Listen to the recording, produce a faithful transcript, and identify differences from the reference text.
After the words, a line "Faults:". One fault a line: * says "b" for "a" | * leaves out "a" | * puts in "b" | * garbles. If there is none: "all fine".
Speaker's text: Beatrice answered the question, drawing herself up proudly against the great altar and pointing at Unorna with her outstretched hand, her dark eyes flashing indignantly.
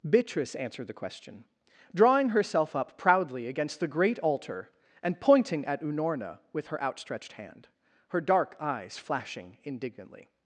Beatrice answered the question, drawing herself up proudly against the great altar and pointing at Unorna with her outstretched hand, her dark eyes flashing indignantly.
Faults:
all fine